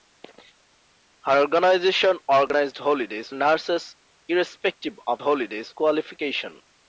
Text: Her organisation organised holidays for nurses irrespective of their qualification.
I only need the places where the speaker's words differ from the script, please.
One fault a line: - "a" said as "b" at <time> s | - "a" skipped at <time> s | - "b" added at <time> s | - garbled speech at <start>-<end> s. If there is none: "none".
- "for" skipped at 3.3 s
- "their" said as "holidays" at 5.2 s